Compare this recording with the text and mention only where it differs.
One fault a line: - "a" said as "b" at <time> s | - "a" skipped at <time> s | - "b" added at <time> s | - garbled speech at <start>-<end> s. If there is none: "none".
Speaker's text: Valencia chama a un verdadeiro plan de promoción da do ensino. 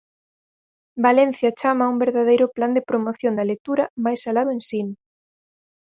- "lectura máis alá" added at 3.5 s